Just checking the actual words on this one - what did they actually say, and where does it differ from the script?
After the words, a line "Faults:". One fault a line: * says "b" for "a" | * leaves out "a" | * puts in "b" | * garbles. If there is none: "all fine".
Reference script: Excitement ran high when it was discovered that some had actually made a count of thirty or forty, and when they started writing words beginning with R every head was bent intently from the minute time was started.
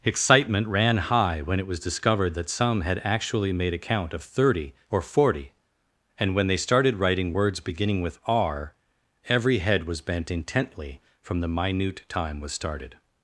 Excitement ran high when it was discovered that some had actually made a count of thirty or forty, and when they started writing words beginning with R every head was bent intently from the minute time was started.
Faults:
all fine